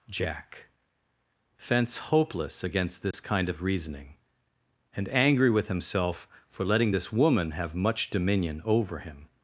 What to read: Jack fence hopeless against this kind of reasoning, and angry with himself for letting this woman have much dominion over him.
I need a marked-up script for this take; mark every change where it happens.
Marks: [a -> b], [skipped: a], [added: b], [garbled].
Jack fence hopeless against this kind of reasoning, and angry with himself for letting this woman have much dominion over him.